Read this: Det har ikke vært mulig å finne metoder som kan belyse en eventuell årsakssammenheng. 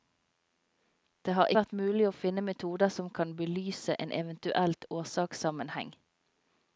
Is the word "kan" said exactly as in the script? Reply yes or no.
yes